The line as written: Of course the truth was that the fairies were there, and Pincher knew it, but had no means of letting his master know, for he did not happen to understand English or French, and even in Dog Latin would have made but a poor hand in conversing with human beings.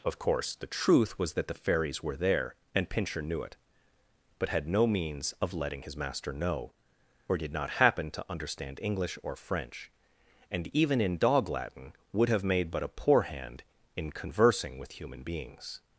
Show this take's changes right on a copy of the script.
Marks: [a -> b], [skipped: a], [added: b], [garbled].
Of course the truth was that the fairies were there, and Pincher knew it, but had no means of letting his master know, [for he -> or] did not happen to understand English or French, and even in Dog Latin would have made but a poor hand in conversing with human beings.